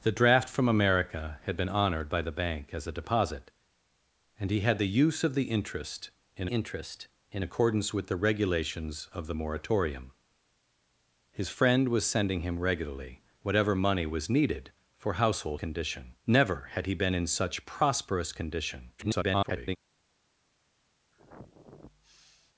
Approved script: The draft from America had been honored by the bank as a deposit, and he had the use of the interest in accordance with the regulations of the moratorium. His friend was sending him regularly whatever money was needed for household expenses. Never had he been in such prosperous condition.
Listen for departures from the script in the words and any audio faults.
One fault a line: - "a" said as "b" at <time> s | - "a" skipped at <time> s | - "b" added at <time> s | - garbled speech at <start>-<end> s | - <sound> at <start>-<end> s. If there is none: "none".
- "interest in" added at 6.4 s
- "expenses" said as "condition" at 15.5 s
- garbled speech at 19.0-19.8 s
- sniff at 21.1-22.5 s